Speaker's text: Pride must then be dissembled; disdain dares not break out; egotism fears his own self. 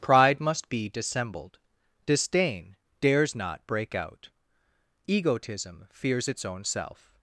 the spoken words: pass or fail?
fail